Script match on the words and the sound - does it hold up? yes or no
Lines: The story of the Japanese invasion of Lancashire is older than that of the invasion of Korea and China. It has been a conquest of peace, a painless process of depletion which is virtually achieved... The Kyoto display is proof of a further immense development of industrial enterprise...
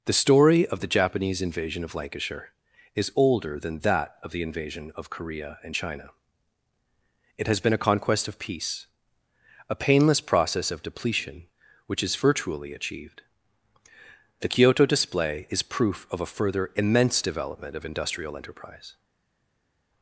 yes